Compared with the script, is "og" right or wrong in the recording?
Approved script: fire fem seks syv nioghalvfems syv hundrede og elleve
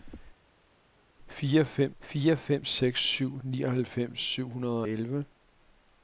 wrong